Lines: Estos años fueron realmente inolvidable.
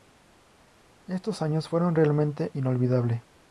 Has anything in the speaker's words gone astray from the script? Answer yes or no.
no